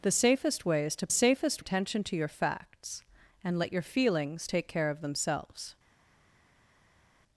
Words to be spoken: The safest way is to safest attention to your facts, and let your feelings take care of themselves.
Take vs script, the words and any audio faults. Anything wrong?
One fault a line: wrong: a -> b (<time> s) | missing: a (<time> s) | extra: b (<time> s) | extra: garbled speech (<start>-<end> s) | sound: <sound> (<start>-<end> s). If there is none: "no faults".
no faults